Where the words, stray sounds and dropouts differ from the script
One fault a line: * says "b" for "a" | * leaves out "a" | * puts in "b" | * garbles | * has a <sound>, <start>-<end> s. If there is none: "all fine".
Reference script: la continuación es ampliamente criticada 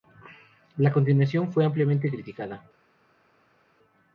* says "fue" for "es"